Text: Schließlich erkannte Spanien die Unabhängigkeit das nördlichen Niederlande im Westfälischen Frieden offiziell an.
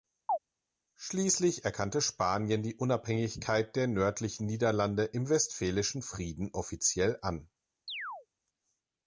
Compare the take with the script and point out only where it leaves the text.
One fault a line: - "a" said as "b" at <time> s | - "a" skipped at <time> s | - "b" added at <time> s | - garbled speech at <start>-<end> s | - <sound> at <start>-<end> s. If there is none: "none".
- chirp at 0.3-0.4 s
- "das" said as "der" at 3.8 s
- chirp at 7.9-8.3 s